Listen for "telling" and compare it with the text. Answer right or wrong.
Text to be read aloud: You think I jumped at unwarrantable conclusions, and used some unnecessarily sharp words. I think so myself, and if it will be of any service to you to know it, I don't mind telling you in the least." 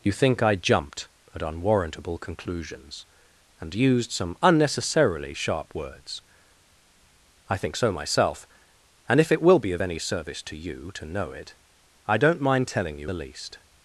right